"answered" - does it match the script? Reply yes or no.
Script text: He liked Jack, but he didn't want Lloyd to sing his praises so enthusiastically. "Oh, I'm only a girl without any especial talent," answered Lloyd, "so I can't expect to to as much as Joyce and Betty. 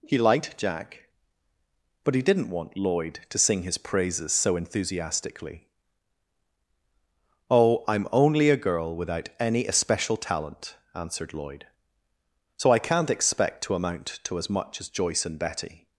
yes